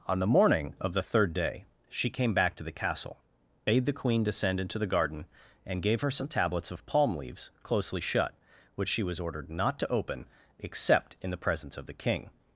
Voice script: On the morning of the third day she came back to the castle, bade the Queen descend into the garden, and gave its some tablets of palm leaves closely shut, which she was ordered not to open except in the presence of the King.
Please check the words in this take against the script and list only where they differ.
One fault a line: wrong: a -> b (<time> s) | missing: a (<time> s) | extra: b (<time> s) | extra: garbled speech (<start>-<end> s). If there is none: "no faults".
wrong: its -> her (6.0 s)